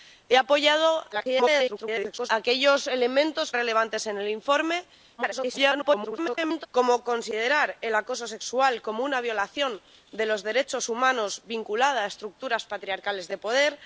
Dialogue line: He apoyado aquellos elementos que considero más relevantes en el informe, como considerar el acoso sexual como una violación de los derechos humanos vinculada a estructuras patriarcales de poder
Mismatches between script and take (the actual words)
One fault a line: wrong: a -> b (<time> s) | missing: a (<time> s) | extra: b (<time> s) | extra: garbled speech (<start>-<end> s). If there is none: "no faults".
extra: garbled speech (1.1-2.3 s)
missing: que considero más (3.5 s)
extra: garbled speech (5.2-6.7 s)